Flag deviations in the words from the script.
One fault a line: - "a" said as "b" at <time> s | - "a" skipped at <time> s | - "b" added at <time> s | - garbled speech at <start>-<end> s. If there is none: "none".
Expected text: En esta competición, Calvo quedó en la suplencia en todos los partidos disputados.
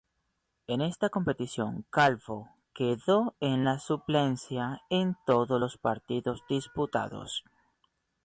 none